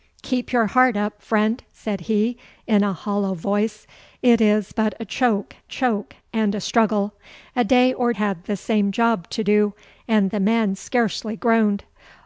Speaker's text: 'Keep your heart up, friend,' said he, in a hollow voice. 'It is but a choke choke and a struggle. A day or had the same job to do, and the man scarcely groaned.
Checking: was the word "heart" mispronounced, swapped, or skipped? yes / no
no